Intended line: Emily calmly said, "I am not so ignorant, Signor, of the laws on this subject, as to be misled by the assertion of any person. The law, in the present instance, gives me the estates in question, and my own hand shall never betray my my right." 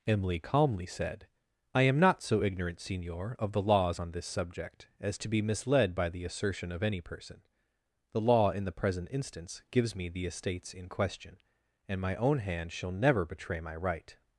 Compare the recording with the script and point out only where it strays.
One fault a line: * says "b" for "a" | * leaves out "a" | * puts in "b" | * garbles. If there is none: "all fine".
* leaves out "my"